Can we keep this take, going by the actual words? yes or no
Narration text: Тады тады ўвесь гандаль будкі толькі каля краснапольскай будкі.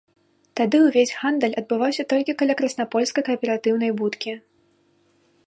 no